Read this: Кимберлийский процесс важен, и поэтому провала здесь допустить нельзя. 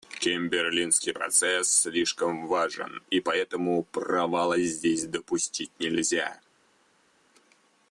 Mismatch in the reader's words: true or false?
true